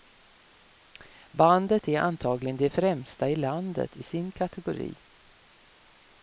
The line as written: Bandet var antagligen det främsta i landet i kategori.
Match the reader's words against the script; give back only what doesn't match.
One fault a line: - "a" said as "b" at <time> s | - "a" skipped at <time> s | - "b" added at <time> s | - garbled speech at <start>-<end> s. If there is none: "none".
- "var" said as "är" at 1.9 s
- "sin" added at 4.0 s